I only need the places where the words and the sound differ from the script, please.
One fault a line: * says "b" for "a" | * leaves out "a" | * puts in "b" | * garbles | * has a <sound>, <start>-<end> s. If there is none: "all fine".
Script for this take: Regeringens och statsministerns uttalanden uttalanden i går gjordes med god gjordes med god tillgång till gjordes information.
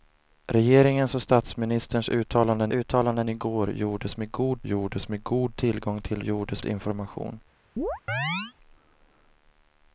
* has a chirp, 7.8-8.5 s